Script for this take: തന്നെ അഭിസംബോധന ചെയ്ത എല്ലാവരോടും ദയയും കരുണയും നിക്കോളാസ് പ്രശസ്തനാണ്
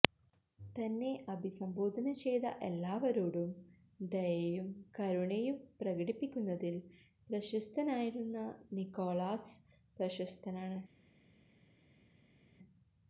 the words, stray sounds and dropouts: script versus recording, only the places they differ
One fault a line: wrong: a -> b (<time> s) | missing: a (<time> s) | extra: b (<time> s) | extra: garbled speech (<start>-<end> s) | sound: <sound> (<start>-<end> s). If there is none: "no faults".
extra: പ്രകടിപ്പിക്കുന്നതിൽ പ്രശസ്തനായിരുന്ന (5.8 s)